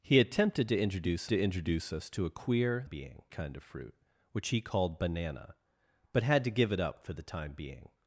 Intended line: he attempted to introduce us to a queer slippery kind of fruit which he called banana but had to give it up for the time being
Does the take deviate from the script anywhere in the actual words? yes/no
yes